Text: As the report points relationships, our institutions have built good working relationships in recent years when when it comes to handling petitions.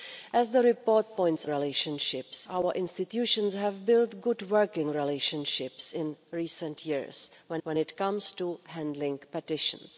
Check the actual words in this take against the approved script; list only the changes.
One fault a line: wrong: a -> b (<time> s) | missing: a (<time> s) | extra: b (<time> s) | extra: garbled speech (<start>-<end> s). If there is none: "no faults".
no faults